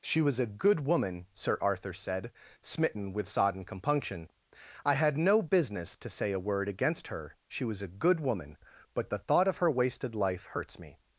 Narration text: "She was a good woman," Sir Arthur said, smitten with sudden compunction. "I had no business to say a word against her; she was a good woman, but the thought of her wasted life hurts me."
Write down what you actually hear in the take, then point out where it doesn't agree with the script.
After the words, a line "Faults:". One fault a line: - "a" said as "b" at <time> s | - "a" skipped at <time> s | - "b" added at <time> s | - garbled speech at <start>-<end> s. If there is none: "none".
"She was a good woman," Sir Arthur said, smitten with sodden compunction. "I had no business to say a word against her; she was a good woman, but the thought of her wasted life hurts me."
Faults:
- "sudden" said as "sodden" at 3.3 s